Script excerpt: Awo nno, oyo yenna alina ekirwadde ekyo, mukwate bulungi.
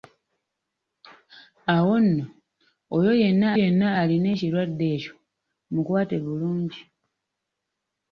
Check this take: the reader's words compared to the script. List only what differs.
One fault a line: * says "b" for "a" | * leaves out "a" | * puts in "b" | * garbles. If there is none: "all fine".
* puts in "yenna"